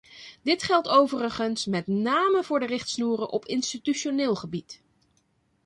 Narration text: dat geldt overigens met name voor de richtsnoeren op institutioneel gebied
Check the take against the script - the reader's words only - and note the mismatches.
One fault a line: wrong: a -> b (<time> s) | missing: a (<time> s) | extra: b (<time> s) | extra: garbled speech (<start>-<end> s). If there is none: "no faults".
wrong: dat -> dit (0.4 s)